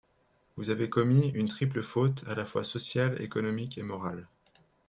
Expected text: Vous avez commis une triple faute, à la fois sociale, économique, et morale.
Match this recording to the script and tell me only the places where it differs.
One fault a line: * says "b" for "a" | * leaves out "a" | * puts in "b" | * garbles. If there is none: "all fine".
all fine